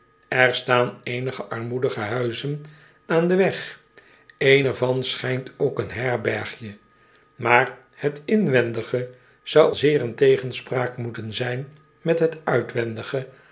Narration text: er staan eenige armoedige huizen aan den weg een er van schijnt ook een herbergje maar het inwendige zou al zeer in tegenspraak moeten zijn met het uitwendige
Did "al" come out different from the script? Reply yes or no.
yes